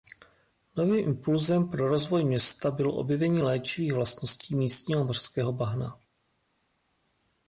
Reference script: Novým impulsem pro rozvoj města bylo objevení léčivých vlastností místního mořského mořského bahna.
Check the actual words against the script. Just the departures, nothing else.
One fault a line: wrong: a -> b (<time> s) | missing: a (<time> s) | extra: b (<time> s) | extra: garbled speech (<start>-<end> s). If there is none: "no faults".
missing: mořského (5.5 s)